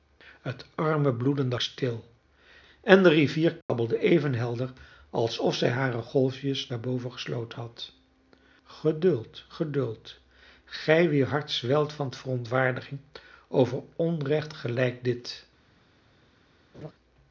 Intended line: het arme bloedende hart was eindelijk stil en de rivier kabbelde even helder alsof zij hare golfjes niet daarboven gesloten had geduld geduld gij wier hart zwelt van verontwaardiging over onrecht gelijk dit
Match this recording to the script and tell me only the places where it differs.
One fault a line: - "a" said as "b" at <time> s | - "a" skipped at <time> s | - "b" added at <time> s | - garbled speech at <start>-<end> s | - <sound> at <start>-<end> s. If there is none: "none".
- "hart was eindelijk" skipped at 1.6 s
- dropout at 3.6-3.7 s
- "niet" skipped at 6.7 s
- laugh at 16.7-16.9 s